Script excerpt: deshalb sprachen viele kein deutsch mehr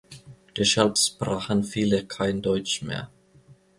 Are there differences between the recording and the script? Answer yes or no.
no